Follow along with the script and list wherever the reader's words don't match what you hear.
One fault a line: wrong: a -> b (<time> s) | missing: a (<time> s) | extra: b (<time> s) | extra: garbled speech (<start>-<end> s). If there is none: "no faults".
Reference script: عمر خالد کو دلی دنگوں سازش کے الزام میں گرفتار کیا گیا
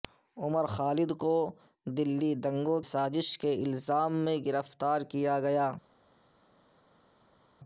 no faults